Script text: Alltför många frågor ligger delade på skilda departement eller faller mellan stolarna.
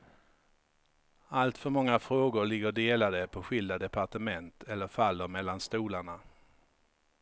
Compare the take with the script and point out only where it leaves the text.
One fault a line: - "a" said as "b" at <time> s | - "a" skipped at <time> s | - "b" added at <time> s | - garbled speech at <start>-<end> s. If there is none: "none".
none